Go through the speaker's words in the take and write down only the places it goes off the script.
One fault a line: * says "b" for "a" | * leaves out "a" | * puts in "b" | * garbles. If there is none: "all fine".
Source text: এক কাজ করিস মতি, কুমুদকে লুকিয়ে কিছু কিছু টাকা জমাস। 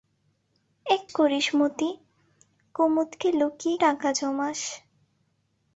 * leaves out "কাজ"
* leaves out "কিছু কিছু"